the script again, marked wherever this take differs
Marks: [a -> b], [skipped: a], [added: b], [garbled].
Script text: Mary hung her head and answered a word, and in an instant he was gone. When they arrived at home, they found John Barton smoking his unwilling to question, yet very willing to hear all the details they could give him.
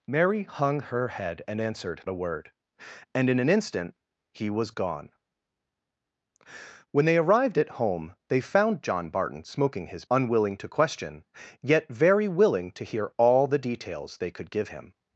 Mary hung her head and answered a word, and in an instant he was gone. When they arrived at home, they found John Barton smoking his unwilling to question, yet very willing to hear all the details they could give him.